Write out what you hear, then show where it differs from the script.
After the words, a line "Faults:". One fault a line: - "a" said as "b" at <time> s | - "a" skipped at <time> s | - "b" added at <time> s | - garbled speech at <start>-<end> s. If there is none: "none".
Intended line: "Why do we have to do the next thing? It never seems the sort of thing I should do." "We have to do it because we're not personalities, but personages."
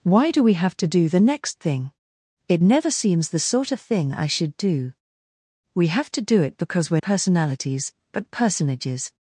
"Why do we have to do the next thing? It never seems the sort of thing I should do." "We have to do it because we're personalities, but personages."
Faults:
- "not" skipped at 7.0 s